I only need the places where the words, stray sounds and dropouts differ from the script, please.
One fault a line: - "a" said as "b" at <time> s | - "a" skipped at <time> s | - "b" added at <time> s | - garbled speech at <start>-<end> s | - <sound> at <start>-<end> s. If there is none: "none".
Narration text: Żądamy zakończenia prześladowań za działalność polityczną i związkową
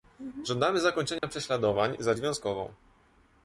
- dropout at 1.2-1.2 s
- "działalność polityczną i" skipped at 2.1 s